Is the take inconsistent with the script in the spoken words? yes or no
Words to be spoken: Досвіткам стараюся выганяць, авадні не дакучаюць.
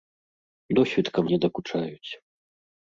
yes